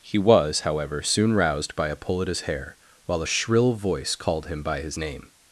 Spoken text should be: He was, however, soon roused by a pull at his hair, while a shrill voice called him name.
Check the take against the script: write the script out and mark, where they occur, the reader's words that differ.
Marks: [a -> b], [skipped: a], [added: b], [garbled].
He was, however, soon roused by a pull at his hair, while a shrill voice called him [added: by his] name.